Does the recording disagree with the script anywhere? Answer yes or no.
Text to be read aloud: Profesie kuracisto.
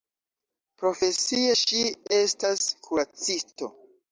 yes